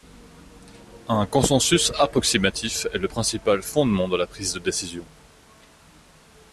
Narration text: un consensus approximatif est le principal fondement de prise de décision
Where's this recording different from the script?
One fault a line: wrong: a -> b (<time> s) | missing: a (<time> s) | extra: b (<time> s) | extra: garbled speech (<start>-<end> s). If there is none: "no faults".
extra: la (4.1 s)